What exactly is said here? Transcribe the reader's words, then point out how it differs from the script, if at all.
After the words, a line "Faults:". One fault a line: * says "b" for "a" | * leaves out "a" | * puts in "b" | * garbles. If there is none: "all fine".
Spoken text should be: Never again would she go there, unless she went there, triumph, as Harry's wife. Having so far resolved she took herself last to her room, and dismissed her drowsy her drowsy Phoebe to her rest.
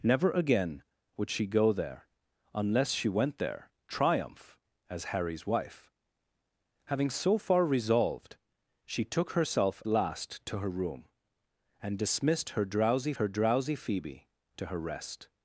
Never again would she go there, unless she went there, triumph, as Harry's wife. Having so far resolved she took herself last to her room, and dismissed her drowsy her drowsy Phoebe to her rest.
Faults:
all fine